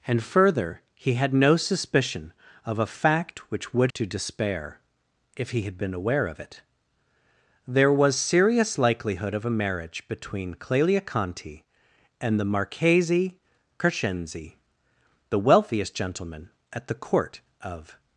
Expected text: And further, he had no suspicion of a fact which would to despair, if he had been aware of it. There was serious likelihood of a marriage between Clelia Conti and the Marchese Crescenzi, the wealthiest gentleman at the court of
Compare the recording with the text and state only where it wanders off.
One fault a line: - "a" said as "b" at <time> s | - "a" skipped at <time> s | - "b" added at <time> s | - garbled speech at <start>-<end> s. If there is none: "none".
none